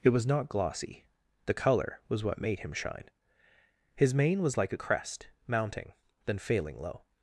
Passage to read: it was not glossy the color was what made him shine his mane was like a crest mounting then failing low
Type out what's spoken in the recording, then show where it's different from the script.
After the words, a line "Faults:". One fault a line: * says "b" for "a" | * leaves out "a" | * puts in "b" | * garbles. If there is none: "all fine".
it was not glossy the color was what made him shine his mane was like a crest mounting then failing low
Faults:
all fine